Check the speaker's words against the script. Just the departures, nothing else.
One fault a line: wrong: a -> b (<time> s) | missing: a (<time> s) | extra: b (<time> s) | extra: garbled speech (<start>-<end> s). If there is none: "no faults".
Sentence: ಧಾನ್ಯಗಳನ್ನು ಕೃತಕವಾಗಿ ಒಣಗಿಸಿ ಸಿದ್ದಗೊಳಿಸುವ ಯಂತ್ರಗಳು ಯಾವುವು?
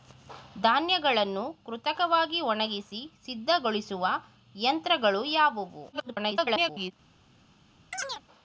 extra: garbled speech (5.9-6.9 s)